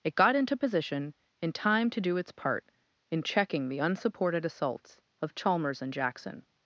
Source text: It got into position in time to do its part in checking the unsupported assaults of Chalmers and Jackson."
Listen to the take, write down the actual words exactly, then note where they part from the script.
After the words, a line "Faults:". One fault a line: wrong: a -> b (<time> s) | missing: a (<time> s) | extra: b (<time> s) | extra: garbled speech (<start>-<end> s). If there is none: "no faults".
It got into position in time to do its part in checking the unsupported assaults of Chalmers and Jackson."
Faults:
no faults